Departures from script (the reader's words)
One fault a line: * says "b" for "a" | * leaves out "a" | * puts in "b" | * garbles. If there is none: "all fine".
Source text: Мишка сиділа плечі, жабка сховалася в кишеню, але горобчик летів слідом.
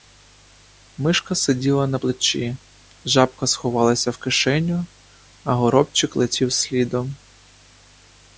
* puts in "на"
* says "а" for "але"